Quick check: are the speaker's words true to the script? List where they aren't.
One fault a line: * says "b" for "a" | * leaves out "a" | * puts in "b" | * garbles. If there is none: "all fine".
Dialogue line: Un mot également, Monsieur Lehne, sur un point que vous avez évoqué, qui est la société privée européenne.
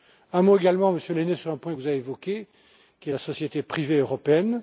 all fine